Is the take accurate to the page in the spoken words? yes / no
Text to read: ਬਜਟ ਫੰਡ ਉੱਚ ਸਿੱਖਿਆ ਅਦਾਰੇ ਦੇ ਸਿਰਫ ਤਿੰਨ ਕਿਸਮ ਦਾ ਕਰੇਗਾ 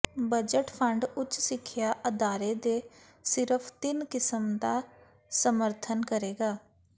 no